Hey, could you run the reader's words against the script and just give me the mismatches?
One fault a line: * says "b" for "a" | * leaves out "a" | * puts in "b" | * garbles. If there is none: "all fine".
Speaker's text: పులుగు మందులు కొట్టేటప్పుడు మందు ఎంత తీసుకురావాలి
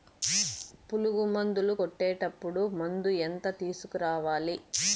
all fine